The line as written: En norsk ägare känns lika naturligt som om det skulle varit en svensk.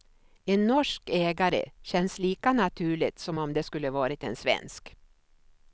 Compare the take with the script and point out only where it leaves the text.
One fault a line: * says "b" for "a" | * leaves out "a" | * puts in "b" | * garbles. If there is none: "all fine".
all fine